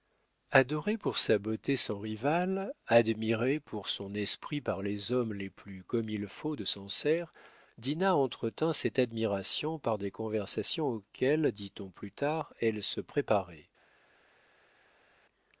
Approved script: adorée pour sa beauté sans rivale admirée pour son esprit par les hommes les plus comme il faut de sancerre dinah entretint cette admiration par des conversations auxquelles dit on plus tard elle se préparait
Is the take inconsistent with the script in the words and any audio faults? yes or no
no